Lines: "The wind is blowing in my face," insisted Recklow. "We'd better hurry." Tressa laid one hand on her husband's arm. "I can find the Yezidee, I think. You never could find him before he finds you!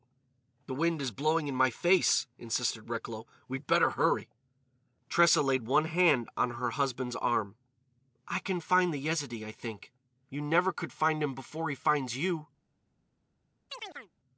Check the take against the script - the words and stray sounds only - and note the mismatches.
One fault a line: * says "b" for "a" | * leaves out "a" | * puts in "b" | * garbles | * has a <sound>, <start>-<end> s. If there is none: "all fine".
* has a chirp, 13.7-14.1 s